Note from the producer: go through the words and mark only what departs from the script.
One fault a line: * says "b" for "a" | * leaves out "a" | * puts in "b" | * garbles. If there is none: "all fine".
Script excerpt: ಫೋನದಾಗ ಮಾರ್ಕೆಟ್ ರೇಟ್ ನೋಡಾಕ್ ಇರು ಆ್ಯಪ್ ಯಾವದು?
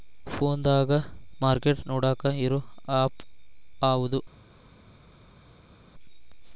* leaves out "ರೇಟ್"